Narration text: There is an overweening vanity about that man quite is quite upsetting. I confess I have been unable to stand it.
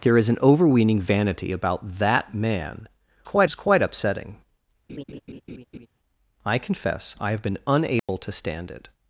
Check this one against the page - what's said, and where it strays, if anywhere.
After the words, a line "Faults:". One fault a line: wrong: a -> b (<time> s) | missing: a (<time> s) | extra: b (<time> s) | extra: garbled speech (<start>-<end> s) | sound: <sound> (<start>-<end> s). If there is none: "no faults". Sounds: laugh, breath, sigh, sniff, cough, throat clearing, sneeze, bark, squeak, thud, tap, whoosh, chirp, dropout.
There is an overweening vanity about that man quite is quite upsetting. I confess I have been unable to stand it.
Faults:
sound: laugh (4.9-5.9 s)
sound: dropout (8.0-8.1 s)